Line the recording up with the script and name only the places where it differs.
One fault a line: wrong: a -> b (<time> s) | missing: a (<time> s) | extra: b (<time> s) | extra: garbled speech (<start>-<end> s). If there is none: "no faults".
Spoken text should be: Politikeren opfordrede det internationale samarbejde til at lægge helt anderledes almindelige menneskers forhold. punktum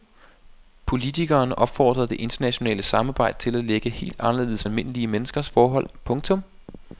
no faults